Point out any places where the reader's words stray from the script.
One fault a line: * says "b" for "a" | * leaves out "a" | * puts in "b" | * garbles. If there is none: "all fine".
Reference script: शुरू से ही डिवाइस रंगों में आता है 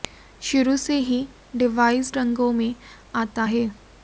all fine